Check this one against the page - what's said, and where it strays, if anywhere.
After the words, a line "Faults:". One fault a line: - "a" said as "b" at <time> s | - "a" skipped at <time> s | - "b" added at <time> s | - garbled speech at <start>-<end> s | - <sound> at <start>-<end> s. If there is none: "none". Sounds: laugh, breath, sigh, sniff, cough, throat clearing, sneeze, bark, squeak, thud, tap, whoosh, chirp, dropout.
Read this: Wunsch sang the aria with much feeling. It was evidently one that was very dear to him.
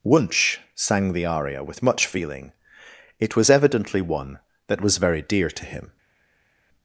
Wunsch sang the aria with much feeling. It was evidently one that was very dear to him.
Faults:
none